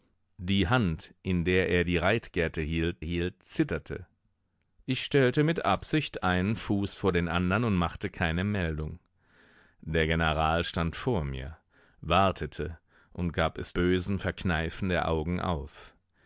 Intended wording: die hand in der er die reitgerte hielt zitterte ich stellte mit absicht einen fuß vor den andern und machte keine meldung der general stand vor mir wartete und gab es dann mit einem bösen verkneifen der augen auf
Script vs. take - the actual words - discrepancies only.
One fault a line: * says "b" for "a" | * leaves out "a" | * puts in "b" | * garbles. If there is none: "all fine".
* puts in "hielt"
* leaves out "dann mit einem"